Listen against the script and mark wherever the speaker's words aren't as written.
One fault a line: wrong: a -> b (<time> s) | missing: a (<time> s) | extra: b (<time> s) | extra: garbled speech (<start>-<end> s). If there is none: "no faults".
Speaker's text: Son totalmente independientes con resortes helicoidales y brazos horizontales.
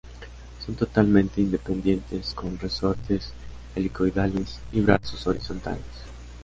no faults